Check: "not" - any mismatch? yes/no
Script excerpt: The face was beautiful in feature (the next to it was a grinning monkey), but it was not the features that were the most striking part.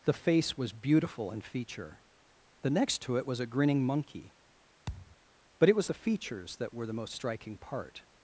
yes